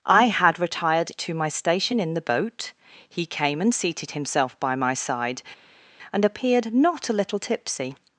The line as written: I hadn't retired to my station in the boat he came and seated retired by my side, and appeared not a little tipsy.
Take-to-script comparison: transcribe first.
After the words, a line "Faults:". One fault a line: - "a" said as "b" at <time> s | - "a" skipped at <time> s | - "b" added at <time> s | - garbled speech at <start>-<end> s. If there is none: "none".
I had retired to my station in the boat he came and seated himself by my side, and appeared not a little tipsy.
Faults:
- "hadn't" said as "had" at 0.2 s
- "retired" said as "himself" at 4.1 s